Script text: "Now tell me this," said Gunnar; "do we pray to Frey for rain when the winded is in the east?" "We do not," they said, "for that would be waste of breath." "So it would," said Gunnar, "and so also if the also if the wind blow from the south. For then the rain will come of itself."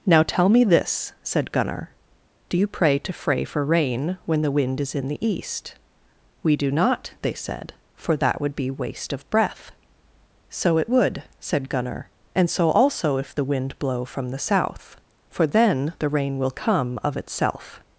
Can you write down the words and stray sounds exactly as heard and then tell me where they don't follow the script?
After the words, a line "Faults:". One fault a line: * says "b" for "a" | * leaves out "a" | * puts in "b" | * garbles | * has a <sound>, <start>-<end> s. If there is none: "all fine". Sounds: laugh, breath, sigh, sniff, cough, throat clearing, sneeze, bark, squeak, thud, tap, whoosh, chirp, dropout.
"Now tell me this," said Gunnar; "do you pray to Frey for rain when the wind is in the east?" "We do not," they said, "for that would be waste of breath." "So it would," said Gunnar, "and so also if the wind blow from the south. For then the rain will come of itself."
Faults:
* says "you" for "we"
* says "wind" for "winded"
* leaves out "also if the"